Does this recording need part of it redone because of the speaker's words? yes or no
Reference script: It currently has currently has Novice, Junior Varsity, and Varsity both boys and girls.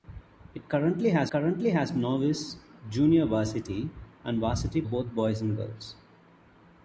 no